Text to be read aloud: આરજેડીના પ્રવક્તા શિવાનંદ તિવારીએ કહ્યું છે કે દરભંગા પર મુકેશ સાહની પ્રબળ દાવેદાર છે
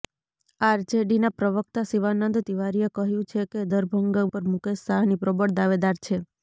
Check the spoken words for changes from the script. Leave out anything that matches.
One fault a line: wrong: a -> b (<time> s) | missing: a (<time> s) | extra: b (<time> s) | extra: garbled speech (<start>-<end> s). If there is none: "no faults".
no faults